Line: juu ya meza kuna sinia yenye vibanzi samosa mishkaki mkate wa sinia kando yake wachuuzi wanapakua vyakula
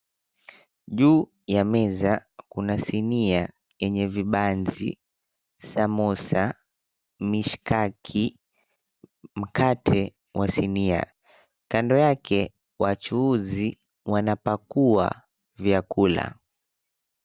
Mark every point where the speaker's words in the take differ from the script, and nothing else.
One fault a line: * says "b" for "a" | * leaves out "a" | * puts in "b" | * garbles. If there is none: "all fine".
all fine